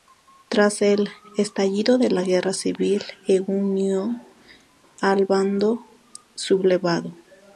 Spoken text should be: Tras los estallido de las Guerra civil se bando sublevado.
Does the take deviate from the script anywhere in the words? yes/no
yes